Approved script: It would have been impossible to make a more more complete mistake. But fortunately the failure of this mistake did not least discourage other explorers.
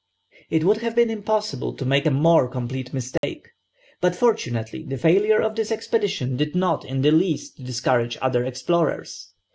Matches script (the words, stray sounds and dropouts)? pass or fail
fail